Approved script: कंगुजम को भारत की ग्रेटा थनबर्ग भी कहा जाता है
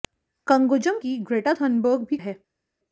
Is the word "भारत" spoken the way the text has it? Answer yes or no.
no